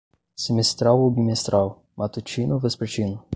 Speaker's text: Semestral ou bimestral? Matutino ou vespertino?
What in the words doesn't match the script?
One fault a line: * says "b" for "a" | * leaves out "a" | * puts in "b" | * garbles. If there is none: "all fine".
all fine